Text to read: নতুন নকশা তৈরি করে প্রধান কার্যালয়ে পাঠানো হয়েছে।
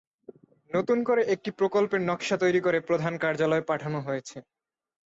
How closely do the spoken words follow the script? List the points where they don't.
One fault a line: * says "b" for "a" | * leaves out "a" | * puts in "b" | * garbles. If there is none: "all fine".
* puts in "করে একটি প্রকল্পের"